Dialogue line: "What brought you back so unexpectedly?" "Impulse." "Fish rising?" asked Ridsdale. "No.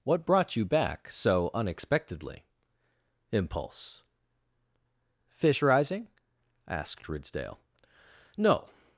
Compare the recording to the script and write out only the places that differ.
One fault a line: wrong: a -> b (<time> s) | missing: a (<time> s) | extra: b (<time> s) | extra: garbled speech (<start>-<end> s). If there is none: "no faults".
no faults